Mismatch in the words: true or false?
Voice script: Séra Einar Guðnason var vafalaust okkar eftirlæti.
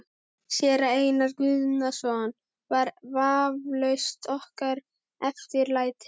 false